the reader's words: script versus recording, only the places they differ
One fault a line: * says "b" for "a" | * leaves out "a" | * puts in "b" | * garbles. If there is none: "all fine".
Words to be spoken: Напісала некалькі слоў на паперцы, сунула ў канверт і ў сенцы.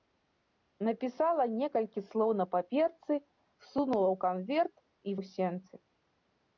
all fine